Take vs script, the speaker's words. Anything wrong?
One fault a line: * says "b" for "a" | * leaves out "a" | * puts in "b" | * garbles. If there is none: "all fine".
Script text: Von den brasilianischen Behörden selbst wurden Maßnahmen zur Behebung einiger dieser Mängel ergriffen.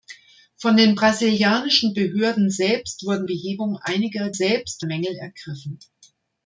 * leaves out "Maßnahmen zur"
* says "selbst" for "dieser"